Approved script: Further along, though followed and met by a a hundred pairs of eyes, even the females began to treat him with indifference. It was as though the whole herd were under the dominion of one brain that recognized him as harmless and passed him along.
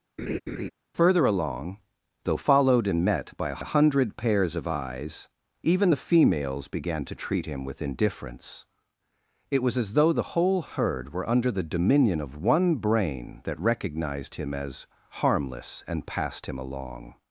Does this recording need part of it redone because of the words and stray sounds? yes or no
yes